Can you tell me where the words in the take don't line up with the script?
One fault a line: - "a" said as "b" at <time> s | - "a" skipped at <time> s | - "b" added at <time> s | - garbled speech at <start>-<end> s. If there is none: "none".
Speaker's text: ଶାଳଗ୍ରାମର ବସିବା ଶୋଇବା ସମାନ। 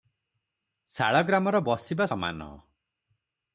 - "ଶୋଇବା" skipped at 2.1 s